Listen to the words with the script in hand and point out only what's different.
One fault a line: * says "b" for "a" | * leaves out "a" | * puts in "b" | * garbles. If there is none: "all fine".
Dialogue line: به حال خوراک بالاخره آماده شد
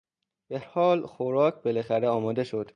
all fine